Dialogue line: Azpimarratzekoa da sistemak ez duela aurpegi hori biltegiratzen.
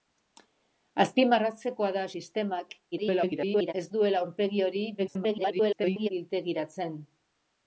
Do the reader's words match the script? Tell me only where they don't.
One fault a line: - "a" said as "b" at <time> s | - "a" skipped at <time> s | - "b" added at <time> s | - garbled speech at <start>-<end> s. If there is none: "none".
- garbled speech at 2.9-3.7 s
- garbled speech at 5.0-6.1 s